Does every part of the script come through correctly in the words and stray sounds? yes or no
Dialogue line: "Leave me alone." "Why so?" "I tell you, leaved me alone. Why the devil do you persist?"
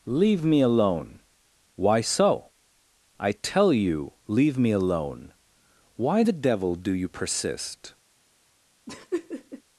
no